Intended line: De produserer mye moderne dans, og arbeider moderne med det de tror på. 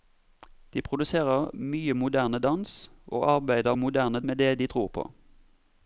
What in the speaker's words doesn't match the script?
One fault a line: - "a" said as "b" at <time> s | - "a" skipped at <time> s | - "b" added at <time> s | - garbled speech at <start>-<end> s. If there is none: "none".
none